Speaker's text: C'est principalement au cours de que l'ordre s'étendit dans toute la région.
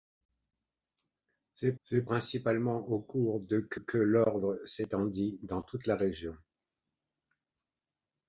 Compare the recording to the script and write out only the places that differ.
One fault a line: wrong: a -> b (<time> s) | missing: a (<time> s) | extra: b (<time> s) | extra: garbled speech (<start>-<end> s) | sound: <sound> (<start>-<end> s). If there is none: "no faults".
extra: c'est (1.8 s)
extra: que (3.7 s)